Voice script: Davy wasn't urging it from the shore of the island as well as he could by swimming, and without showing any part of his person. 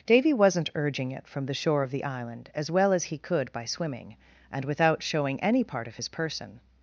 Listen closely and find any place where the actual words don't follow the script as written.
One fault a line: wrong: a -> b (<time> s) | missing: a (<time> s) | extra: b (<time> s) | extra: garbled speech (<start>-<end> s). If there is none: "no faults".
no faults